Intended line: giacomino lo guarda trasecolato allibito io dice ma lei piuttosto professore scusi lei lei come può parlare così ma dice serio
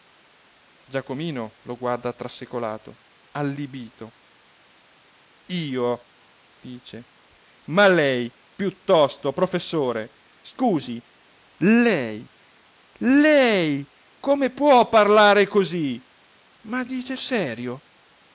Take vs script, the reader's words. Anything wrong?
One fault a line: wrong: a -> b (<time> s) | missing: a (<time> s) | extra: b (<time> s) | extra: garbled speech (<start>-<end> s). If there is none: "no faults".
no faults